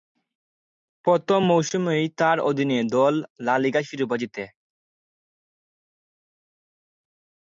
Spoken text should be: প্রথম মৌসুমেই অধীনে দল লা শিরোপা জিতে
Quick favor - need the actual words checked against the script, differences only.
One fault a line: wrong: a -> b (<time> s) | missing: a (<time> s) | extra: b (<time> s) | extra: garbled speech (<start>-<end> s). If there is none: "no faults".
extra: তার (2.2 s)
extra: লিগা (3.6 s)